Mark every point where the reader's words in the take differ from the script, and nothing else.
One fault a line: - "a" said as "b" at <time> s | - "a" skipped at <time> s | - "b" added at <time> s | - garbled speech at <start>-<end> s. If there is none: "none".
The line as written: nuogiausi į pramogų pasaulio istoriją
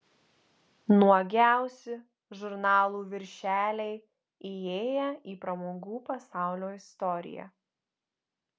- "žurnalų viršeliai įėję" added at 2.4 s